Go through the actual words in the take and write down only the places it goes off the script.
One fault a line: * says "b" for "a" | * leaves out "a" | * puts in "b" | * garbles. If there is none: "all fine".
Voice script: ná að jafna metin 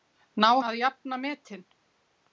all fine